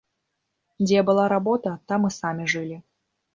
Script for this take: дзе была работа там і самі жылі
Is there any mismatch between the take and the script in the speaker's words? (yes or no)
no